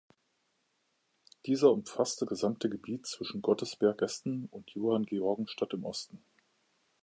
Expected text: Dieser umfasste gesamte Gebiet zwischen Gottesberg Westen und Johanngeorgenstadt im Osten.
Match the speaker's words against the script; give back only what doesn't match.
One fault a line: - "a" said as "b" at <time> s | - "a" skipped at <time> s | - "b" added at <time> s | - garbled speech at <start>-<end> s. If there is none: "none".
none